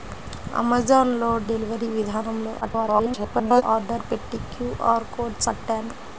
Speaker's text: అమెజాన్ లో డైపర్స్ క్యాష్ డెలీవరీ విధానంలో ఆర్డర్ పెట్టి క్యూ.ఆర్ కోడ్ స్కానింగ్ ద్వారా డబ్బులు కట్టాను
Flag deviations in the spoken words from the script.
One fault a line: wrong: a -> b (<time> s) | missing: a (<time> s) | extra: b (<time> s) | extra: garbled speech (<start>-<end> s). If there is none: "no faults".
missing: డైపర్స్ క్యాష్ (1.3 s)
extra: garbled speech (2.6-3.6 s)
missing: స్కానింగ్ ద్వారా డబ్బులు (5.4 s)